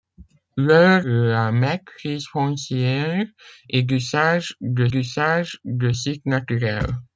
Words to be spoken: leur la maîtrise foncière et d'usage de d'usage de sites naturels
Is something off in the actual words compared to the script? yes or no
no